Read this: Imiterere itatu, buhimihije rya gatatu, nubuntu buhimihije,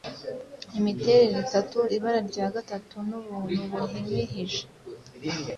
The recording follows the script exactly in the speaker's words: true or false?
false